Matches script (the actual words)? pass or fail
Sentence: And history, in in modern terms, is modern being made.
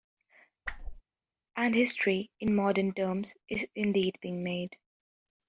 fail